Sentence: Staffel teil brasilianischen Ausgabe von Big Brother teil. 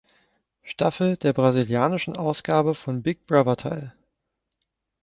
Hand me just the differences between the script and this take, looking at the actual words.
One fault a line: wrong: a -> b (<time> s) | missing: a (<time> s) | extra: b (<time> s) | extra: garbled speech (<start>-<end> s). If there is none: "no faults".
wrong: teil -> der (1.1 s)